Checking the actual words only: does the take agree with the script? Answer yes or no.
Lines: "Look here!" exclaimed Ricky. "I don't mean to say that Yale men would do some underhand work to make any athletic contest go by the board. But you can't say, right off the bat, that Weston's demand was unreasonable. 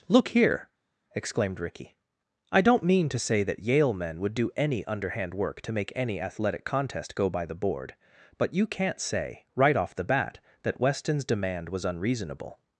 no